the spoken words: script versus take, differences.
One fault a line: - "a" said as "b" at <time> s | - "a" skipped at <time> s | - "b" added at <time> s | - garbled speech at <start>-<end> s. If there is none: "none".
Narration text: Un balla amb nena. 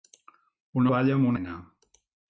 none